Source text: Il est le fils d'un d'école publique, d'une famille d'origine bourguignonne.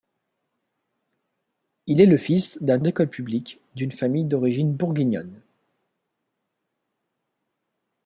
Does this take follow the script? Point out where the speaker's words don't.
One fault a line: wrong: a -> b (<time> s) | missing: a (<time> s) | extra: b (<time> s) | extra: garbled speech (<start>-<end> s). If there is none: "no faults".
no faults